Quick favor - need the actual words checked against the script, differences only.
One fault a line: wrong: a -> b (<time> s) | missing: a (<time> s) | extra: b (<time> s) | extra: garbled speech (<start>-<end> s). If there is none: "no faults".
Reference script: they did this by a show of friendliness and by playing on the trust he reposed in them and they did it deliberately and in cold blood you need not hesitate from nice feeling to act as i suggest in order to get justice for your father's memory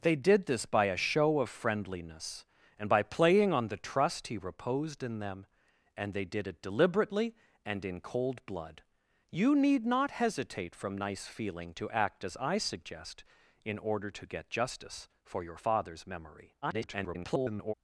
extra: garbled speech (16.6-17.7 s)